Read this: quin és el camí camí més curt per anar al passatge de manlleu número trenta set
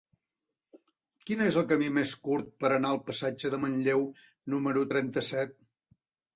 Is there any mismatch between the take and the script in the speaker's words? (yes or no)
yes